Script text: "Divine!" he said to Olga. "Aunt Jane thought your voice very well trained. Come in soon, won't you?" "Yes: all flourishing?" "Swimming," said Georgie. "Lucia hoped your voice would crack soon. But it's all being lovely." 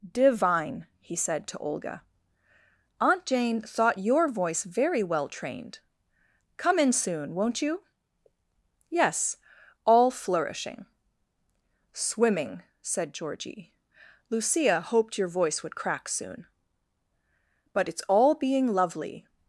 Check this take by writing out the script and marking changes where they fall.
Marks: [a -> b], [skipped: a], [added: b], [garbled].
"Divine!" he said to Olga. "Aunt Jane thought your voice very well trained. Come in soon, won't you?" "Yes: all flourishing?" "Swimming," said Georgie. "Lucia hoped your voice would crack soon. But it's all being lovely."